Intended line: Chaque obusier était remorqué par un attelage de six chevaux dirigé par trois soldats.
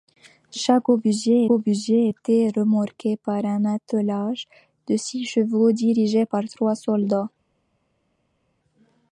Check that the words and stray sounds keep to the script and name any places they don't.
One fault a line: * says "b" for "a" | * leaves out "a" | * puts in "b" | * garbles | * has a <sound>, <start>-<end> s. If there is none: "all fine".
* puts in "obusier"